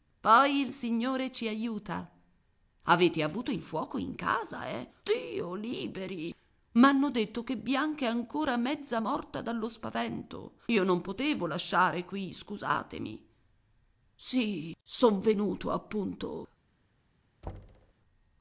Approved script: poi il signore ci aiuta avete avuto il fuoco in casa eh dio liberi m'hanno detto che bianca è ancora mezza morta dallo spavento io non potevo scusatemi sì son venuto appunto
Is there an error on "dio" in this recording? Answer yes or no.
no